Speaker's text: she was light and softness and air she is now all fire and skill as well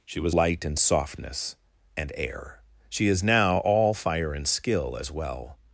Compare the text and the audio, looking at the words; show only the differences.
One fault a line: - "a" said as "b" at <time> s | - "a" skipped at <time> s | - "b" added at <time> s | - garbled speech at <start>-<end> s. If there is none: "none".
none